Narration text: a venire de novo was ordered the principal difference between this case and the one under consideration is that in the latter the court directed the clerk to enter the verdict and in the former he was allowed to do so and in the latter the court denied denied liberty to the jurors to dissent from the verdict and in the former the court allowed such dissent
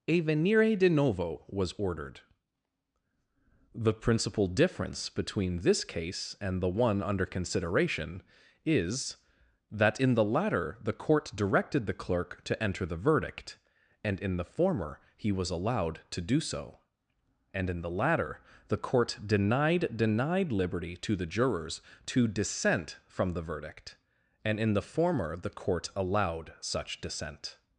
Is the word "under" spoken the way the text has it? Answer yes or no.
yes